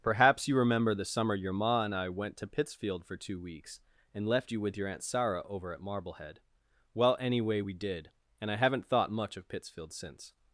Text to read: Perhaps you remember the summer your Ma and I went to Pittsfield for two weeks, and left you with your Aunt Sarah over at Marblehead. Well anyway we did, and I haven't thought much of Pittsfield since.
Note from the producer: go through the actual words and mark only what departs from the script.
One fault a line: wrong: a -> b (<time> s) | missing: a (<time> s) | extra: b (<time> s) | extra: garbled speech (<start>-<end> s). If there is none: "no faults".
no faults